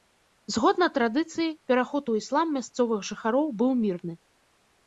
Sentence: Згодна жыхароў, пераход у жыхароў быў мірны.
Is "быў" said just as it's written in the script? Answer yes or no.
yes